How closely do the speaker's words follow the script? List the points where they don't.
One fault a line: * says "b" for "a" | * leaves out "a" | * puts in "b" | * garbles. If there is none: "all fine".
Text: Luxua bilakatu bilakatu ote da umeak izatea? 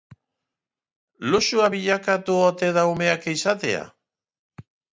* leaves out "bilakatu"